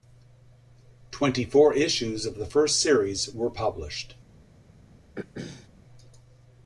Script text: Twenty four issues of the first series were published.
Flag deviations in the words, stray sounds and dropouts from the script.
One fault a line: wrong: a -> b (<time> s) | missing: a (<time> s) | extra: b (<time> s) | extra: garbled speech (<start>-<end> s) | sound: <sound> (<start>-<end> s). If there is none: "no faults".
sound: throat clearing (5.2-5.7 s)